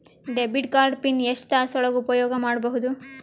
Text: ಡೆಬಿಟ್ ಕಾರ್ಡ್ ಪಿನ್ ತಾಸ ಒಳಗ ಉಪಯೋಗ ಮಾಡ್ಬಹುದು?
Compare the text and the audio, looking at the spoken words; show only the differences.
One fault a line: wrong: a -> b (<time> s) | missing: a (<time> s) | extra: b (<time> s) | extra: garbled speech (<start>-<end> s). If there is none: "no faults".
extra: ಎಷ್ಟ (1.2 s)